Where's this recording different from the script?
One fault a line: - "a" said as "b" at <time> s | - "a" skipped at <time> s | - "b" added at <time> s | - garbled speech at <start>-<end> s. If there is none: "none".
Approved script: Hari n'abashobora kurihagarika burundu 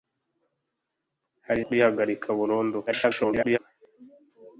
- "n'abashobora" skipped at 1.6 s
- garbled speech at 2.9-3.6 s